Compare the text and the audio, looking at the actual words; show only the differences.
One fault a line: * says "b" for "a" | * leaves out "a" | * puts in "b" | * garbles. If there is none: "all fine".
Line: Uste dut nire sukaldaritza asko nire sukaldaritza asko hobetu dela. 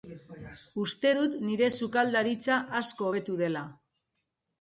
* leaves out "nire sukaldaritza asko"